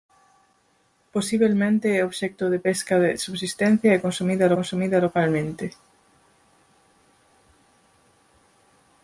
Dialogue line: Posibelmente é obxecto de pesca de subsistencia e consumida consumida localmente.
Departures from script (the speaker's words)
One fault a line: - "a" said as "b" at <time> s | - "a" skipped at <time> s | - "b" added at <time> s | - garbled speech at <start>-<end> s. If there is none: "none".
none